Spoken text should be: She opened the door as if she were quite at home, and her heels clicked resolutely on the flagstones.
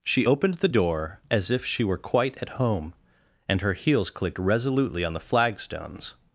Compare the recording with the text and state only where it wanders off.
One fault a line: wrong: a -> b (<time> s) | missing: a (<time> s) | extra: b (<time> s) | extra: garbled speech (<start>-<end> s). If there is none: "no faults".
no faults